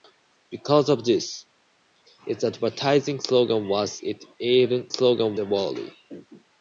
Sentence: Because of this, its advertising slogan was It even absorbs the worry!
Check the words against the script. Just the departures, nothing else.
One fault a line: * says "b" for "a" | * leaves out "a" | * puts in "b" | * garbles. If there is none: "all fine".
* says "slogan" for "absorbs"